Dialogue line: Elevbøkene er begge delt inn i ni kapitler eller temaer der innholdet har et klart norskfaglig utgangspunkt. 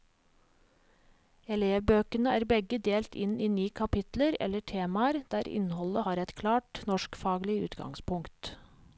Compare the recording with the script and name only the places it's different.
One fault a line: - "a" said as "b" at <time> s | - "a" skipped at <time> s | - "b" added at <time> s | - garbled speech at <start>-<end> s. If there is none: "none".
none